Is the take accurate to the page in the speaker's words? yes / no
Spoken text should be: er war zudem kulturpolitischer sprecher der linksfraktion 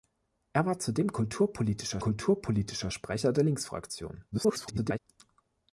no